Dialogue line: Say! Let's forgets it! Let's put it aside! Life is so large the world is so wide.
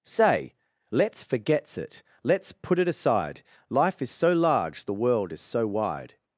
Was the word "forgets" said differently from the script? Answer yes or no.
no